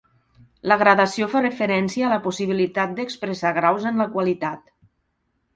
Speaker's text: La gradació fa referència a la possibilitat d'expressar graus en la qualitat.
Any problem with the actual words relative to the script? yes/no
no